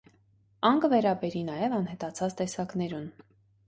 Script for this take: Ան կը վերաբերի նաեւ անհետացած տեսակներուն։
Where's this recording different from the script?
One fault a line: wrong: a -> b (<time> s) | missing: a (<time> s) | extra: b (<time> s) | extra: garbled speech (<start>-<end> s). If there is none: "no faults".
no faults